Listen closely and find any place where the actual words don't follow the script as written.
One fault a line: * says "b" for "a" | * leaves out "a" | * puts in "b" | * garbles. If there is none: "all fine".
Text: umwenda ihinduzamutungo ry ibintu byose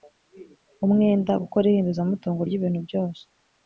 * puts in "gukora"